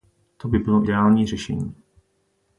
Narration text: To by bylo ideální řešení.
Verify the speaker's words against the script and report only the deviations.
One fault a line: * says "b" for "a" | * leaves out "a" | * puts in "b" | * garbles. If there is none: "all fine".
all fine